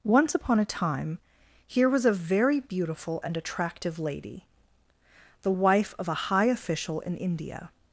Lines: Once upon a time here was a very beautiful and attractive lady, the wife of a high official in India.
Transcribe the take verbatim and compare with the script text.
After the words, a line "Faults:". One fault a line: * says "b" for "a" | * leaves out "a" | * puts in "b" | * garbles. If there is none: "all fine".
Once upon a time here was a very beautiful and attractive lady, the wife of a high official in India.
Faults:
all fine